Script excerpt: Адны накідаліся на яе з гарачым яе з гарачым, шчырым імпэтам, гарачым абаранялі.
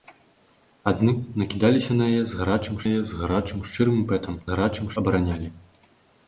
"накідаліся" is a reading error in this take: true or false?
false